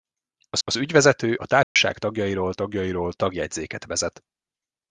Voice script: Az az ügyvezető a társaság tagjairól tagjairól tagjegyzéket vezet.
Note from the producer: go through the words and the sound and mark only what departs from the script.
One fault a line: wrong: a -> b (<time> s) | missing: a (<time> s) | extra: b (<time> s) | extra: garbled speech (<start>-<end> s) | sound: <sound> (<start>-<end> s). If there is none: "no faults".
sound: dropout (1.6-1.8 s)